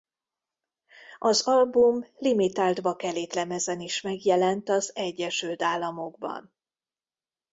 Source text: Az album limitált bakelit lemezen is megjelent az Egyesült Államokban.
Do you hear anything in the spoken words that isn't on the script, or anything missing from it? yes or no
no